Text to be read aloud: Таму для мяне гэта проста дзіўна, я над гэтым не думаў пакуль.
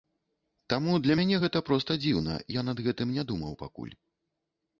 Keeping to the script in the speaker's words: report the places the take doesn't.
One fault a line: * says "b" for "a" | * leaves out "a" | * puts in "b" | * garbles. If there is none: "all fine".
all fine